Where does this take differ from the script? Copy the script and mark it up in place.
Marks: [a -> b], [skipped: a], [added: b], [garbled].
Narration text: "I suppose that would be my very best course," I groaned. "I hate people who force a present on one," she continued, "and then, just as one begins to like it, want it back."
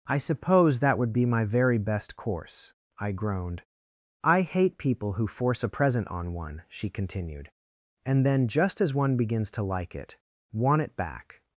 "I suppose that would be my very best course," I groaned. "I hate people who force a present on one," she continued, "and then, just as one begins to like it, want it back."